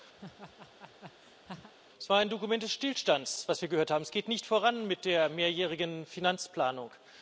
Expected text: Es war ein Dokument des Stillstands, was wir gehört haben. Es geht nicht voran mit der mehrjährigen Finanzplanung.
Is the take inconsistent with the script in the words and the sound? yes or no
yes